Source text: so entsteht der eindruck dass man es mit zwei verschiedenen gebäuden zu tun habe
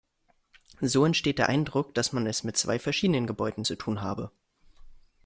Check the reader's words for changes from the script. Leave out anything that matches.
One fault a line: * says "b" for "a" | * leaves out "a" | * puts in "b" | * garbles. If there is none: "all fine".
all fine